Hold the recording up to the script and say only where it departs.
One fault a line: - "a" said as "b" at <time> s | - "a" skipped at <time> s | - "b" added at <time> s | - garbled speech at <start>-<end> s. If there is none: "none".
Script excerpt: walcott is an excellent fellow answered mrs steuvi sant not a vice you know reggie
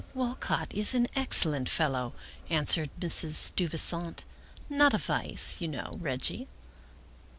none